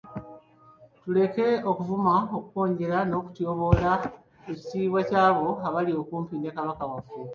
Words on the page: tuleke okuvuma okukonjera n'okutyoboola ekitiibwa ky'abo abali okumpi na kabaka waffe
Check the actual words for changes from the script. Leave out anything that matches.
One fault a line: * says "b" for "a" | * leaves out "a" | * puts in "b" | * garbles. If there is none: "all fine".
* says "ne" for "na"